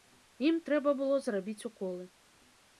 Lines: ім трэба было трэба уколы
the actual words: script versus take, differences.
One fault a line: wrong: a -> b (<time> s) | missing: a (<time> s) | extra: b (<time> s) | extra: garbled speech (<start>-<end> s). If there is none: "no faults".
wrong: трэба -> зрабіць (1.3 s)